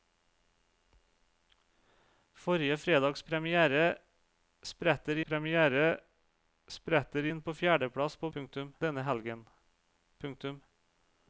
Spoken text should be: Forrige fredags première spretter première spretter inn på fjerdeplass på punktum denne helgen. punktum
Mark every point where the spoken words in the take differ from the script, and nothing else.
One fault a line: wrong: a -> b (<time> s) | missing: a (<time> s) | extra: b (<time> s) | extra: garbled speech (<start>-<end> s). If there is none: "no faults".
no faults